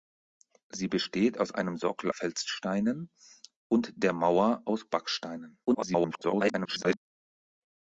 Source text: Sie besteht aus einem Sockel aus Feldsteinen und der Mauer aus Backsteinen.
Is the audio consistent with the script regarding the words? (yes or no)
no